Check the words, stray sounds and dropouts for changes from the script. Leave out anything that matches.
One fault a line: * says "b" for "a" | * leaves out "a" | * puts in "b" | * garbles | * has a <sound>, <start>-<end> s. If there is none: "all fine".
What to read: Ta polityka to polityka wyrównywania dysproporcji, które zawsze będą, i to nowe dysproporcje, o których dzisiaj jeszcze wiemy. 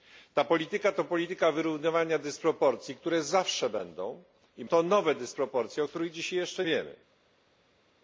all fine